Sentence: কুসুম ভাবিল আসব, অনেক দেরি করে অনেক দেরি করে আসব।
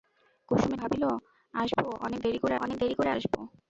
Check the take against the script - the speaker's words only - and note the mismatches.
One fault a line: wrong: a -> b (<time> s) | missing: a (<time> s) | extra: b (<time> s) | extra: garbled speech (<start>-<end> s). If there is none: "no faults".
no faults